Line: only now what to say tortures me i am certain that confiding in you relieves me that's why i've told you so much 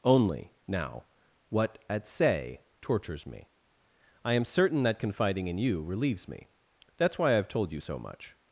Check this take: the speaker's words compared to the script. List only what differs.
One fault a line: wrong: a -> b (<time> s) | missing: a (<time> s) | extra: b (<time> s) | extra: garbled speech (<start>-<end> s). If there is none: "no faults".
wrong: to -> at (1.9 s)